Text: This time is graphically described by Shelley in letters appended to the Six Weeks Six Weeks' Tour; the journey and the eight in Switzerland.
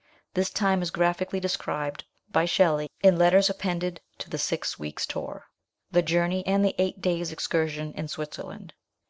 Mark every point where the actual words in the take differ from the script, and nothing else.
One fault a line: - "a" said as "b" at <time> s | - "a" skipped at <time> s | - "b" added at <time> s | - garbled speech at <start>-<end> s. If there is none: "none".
- "Six Weeks" skipped at 5.0 s
- "days excursion" added at 7.0 s